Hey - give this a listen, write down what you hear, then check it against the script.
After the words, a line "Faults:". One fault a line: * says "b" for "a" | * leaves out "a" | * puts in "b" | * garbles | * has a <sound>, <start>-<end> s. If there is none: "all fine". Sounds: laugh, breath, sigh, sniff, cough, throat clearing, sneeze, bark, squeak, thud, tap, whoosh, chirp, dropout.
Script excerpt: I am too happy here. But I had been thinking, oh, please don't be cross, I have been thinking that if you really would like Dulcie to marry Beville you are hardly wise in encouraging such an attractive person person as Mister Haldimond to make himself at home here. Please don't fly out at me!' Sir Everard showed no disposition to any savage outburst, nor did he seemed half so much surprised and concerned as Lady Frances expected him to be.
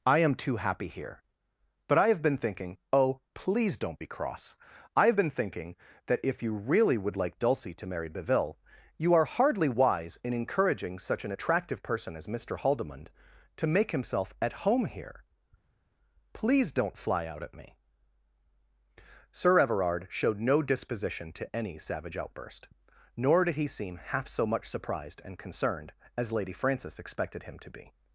I am too happy here. But I have been thinking, oh, please don't be cross, I have been thinking that if you really would like Dulcie to marry Beville you are hardly wise in encouraging such an attractive person as Mister Haldimond to make himself at home here. Please don't fly out at me!' Sir Everard showed no disposition to any savage outburst, nor did he seem half so much surprised and concerned as Lady Frances expected him to be.
Faults:
* says "have" for "had"
* leaves out "person"
* says "seem" for "seemed"